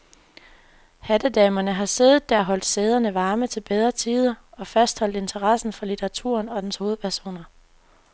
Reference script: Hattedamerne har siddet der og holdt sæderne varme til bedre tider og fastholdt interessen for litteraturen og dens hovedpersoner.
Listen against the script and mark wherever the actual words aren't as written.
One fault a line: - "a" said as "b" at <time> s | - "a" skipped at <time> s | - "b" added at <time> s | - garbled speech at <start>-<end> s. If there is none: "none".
none